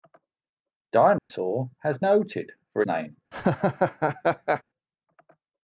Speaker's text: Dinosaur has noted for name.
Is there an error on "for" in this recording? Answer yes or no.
no